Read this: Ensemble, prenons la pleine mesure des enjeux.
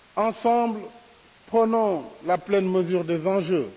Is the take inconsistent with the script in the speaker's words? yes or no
no